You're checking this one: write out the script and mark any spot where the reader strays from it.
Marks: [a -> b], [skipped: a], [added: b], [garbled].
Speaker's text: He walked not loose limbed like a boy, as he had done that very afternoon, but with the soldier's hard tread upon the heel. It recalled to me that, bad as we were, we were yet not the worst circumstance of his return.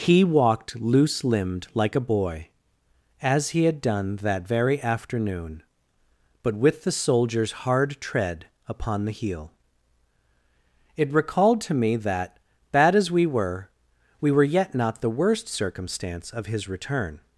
He walked [skipped: not] loose limbed like a boy, as he had done that very afternoon, but with the soldier's hard tread upon the heel. It recalled to me that, bad as we were, we were yet not the worst circumstance of his return.